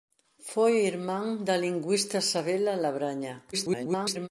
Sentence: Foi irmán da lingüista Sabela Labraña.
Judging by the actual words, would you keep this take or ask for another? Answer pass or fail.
fail